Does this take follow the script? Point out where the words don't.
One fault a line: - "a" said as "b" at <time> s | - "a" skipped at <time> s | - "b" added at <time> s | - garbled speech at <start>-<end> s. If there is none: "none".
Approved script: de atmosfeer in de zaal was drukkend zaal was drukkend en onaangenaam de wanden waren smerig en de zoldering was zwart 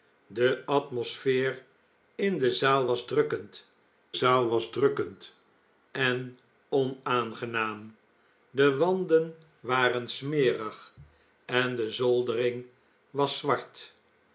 none